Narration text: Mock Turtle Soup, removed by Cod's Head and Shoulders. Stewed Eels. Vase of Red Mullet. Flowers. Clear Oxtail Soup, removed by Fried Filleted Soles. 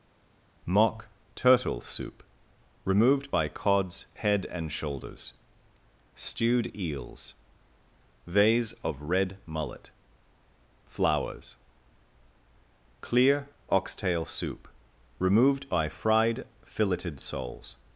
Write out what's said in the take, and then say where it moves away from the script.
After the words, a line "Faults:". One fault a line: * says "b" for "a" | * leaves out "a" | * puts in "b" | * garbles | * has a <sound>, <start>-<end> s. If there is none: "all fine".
Mock Turtle Soup, removed by Cod's Head and Shoulders. Stewed Eels. Vase of Red Mullet. Flowers. Clear Oxtail Soup, removed by Fried Filleted Soles.
Faults:
all fine